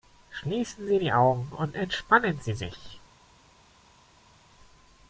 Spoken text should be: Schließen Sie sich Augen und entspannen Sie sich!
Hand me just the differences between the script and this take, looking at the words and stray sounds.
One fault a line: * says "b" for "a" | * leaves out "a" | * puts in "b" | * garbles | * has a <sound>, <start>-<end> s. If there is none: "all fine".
* says "die" for "sich"